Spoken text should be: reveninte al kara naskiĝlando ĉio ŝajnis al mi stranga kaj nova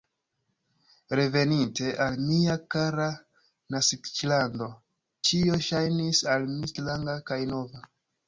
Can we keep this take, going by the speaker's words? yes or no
no